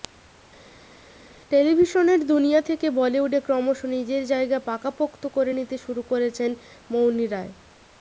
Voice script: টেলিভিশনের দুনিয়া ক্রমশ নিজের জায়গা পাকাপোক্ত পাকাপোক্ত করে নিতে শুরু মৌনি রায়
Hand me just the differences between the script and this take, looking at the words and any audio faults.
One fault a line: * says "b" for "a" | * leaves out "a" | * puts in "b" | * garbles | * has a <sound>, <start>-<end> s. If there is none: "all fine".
* puts in "থেকে বলিউডে"
* leaves out "পাকাপোক্ত"
* puts in "করেছেন"